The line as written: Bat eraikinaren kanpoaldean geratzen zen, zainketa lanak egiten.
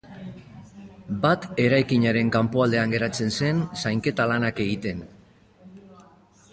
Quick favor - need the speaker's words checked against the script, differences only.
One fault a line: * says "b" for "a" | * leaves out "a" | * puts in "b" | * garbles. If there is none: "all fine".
all fine